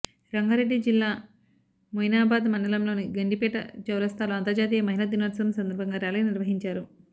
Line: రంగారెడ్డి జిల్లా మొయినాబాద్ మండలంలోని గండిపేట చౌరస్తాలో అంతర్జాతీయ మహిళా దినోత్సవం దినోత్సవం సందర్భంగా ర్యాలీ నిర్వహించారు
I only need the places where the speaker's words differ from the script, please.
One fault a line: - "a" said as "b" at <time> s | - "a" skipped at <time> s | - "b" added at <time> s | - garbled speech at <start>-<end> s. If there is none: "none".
- "దినోత్సవం" skipped at 5.5 s